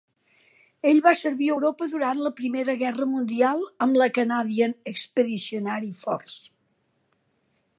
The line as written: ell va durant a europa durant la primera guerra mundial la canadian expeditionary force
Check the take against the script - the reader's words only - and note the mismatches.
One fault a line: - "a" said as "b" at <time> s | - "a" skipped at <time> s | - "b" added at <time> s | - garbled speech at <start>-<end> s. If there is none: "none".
- "durant" said as "servir" at 1.2 s
- "amb" added at 3.9 s